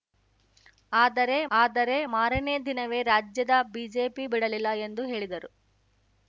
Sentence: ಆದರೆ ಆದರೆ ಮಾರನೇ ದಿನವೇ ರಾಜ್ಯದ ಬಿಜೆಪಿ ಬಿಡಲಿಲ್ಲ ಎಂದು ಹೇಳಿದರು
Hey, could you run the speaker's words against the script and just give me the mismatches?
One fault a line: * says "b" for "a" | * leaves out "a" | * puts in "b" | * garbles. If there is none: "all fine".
all fine